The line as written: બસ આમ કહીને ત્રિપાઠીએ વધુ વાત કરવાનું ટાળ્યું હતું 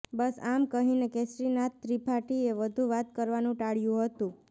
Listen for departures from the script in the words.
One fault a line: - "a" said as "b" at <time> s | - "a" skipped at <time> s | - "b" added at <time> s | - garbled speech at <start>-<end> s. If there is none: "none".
- "કેસરીનાથ" added at 1.1 s